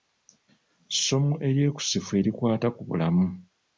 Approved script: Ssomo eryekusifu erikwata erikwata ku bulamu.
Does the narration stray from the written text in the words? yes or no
yes